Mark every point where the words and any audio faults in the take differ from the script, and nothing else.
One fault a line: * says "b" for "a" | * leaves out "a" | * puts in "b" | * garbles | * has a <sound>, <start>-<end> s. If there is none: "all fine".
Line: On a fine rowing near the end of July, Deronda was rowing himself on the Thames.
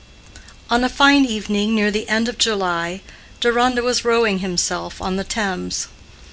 * says "evening" for "rowing"